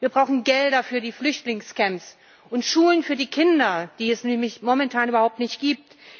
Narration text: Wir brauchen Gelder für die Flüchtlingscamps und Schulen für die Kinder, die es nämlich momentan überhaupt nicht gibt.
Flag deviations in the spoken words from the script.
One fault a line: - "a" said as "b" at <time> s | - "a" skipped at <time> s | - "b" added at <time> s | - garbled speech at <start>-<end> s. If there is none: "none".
none